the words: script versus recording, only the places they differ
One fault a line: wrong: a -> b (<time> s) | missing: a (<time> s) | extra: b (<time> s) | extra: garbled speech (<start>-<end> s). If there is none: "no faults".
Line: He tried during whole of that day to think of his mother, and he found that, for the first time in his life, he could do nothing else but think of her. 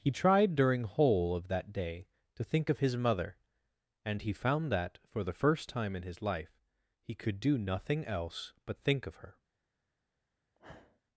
no faults